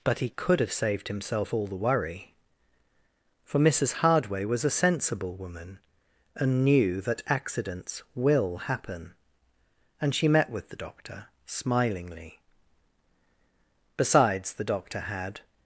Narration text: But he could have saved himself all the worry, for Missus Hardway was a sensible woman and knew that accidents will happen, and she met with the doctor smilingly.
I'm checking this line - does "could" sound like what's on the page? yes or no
yes